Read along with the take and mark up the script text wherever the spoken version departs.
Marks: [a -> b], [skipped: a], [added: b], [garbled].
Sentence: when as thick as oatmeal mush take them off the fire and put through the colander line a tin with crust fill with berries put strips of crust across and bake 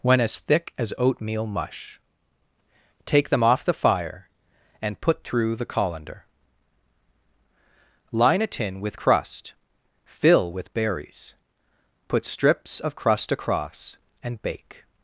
when as thick as oatmeal mush take them off the fire and put through the colander line a tin with crust fill with berries put strips of crust across and bake